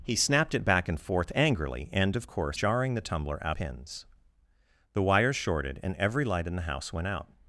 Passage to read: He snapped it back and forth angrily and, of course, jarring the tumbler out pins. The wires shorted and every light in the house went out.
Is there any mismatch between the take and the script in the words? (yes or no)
no